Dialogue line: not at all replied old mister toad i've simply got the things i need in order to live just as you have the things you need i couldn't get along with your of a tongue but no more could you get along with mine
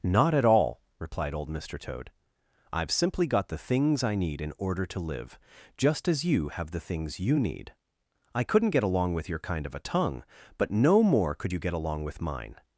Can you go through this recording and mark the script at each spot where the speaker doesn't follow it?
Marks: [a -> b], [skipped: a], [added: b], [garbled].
not at all replied old mister toad i've simply got the things i need in order to live just as you have the things you need i couldn't get along with your [added: kind] of a tongue but no more could you get along with mine